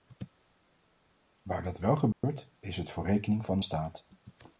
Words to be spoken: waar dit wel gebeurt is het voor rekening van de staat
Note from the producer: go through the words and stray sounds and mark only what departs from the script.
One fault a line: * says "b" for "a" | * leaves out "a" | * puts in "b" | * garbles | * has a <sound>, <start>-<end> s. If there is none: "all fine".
* says "dat" for "dit"
* has a dropout, 2.1-2.2 s